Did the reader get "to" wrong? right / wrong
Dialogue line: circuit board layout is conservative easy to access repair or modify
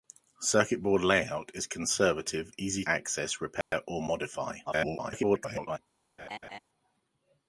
wrong